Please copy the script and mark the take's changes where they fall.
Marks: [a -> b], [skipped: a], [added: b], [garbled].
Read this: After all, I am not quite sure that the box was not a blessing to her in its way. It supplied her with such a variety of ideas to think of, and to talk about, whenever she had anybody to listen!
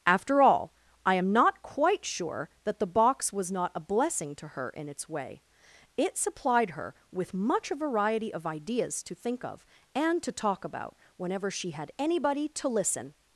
After all, I am not quite sure that the box was not a blessing to her in its way. It supplied her with [such -> much] a variety of ideas to think of, and to talk about, whenever she had anybody to listen!